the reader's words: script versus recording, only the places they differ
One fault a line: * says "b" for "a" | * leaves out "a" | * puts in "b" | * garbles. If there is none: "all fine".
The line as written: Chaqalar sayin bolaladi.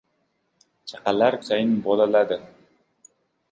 all fine